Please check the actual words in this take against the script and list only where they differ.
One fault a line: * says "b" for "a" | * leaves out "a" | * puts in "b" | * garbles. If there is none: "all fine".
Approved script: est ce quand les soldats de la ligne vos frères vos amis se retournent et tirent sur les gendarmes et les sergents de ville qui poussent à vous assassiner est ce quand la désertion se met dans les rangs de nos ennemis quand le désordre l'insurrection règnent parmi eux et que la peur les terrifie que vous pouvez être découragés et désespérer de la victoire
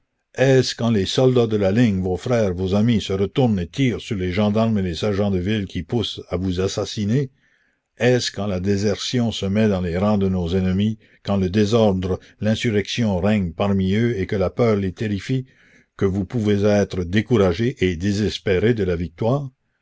all fine